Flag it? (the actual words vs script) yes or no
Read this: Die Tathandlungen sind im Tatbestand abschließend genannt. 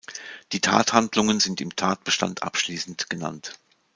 no